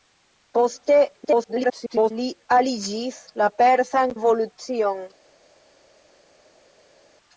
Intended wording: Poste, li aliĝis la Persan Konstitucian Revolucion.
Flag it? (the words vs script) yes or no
yes